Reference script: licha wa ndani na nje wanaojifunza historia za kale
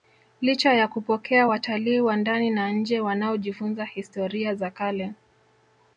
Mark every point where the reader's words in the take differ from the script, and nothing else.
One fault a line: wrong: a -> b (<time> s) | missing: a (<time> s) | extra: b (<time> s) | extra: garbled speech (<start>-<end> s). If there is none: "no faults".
extra: ya kupokea watalii (0.7 s)